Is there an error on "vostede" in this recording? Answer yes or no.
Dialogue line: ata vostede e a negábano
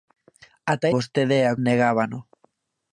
no